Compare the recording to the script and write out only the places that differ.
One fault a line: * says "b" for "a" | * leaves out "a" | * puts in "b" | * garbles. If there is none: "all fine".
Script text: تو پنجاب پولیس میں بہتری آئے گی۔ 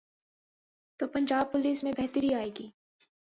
all fine